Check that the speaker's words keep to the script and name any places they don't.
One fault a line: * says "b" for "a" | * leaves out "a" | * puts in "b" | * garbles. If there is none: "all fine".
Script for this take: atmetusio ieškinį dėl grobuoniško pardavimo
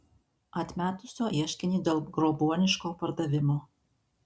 all fine